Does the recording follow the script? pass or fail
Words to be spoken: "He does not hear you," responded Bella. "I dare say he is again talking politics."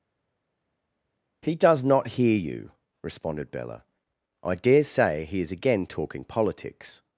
pass